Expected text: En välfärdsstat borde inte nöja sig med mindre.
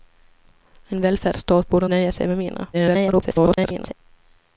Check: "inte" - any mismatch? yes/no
yes